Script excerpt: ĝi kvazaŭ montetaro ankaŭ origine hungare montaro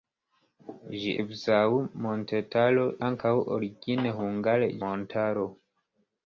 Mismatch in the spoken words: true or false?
false